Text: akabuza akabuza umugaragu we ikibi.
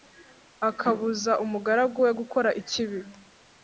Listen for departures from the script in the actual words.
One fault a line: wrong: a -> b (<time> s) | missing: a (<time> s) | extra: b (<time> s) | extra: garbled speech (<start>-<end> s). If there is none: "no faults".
missing: akabuza (1.3 s)
extra: gukora (2.2 s)